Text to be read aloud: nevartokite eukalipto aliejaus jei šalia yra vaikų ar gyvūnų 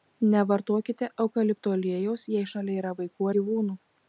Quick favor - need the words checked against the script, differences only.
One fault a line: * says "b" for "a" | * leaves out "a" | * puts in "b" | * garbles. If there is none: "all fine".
* leaves out "ar"